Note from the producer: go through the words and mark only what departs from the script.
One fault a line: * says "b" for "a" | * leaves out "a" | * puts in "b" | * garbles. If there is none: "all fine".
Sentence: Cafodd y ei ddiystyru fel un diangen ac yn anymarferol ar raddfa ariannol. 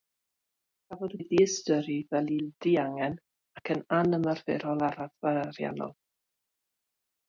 all fine